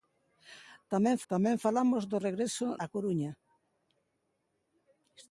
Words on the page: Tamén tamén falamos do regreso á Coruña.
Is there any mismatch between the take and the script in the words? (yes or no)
no